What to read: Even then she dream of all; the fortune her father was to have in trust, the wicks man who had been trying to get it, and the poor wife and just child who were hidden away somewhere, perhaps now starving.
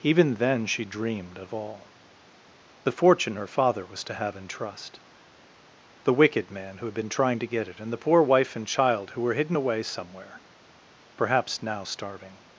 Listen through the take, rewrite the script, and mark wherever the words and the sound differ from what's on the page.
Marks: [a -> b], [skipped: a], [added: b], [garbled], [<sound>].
Even then she [dream -> dreamed] of all; the fortune her father was to have in trust, the [wicks -> wicked] man who had been trying to get it, and the poor wife and [skipped: just] child who were hidden away somewhere, perhaps now starving.